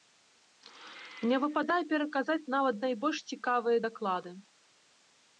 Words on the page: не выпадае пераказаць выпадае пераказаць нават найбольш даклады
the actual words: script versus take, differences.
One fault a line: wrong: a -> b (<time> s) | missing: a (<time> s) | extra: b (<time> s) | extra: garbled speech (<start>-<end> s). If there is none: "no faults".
missing: выпадае пераказаць (2.5 s)
extra: цікавыя (3.4 s)